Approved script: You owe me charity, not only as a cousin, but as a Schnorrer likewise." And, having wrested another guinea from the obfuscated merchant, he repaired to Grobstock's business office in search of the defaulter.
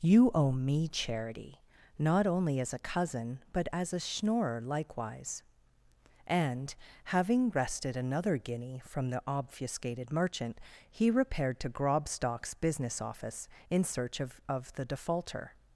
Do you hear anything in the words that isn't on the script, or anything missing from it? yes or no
yes